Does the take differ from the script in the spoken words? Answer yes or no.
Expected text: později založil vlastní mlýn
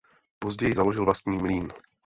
no